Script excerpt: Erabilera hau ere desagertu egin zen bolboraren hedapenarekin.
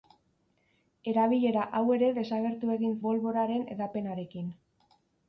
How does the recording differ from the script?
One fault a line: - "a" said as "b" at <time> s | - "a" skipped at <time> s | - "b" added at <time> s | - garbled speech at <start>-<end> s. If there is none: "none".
- "zen" skipped at 3.0 s